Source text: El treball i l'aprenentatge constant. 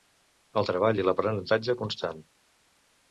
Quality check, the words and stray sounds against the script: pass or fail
pass